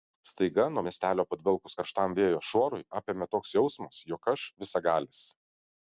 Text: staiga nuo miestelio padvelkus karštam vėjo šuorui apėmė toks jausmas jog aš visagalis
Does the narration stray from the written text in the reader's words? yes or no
no